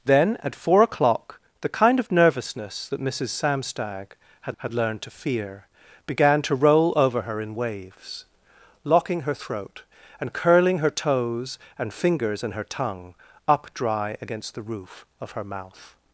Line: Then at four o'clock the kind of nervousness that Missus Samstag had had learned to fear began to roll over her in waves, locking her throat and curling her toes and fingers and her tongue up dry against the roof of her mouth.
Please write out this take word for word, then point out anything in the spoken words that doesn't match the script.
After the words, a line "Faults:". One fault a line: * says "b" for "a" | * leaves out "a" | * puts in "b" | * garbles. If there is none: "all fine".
Then at four o'clock the kind of nervousness that Missus Samstag had had learned to fear began to roll over her in waves, locking her throat and curling her toes and fingers and her tongue up dry against the roof of her mouth.
Faults:
all fine